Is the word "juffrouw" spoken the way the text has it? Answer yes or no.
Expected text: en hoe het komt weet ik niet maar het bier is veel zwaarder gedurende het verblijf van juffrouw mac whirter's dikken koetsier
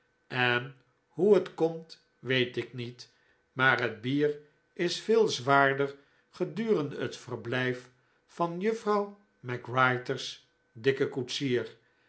yes